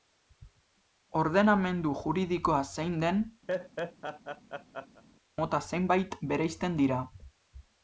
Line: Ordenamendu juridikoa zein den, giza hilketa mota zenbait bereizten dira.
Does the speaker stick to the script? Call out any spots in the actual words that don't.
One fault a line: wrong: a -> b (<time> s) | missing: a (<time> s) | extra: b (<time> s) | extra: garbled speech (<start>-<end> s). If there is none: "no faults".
missing: giza hilketa (3.2 s)